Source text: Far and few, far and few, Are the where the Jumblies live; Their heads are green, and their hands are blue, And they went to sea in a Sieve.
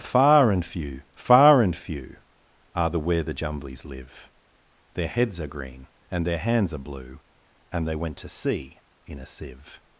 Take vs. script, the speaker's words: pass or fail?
pass